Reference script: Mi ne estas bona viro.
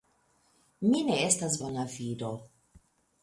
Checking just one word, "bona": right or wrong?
right